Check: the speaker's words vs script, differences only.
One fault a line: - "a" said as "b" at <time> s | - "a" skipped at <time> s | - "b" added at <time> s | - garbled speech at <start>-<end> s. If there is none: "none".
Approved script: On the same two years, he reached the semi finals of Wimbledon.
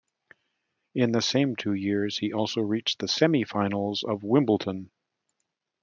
- "On" said as "In" at 0.9 s
- "also" added at 2.3 s